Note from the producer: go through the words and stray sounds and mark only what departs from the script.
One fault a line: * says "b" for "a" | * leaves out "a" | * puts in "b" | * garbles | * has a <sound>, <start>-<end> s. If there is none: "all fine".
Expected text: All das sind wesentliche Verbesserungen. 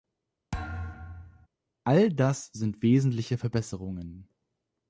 * has a thud, 0.5-1.5 s